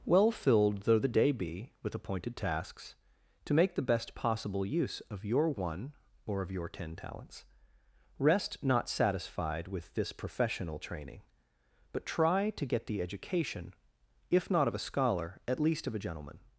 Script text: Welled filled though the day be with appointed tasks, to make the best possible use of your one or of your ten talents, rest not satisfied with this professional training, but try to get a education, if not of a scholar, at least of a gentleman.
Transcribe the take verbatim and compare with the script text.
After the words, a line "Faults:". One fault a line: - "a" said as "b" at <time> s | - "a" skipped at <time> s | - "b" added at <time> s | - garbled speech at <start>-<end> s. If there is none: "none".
Well filled though the day be with appointed tasks, to make the best possible use of your one or of your ten talents, rest not satisfied with this professional training, but try to get the education, if not of a scholar, at least of a gentleman.
Faults:
- "Welled" said as "Well" at 0.1 s
- "a" said as "the" at 12.9 s